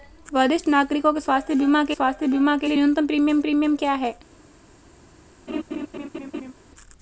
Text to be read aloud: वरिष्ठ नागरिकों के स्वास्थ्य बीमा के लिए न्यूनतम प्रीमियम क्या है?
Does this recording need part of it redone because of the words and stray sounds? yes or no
yes